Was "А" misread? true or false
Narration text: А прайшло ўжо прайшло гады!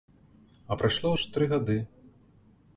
false